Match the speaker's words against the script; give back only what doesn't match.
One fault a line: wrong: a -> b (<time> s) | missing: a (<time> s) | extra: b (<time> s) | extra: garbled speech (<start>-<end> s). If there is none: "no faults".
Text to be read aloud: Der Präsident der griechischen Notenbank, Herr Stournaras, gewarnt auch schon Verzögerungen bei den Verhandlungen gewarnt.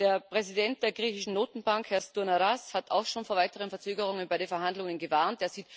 wrong: gewarnt -> hat (2.8 s)
extra: vor weiteren (3.3 s)